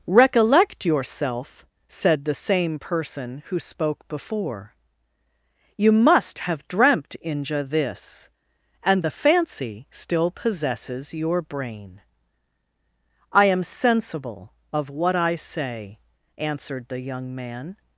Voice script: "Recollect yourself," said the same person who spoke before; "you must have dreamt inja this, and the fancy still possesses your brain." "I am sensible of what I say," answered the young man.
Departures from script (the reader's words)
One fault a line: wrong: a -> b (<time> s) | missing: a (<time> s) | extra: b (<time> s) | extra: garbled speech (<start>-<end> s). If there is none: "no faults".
no faults